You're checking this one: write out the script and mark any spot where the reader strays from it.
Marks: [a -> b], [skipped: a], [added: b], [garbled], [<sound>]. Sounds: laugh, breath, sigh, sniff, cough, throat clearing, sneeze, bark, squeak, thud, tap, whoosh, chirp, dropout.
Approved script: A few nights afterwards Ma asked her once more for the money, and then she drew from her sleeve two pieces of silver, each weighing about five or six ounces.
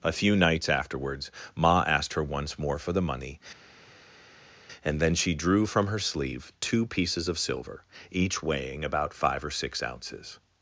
A few nights afterwards Ma asked her once more for the money, and then she drew from her sleeve two pieces of silver, each weighing about five or six ounces.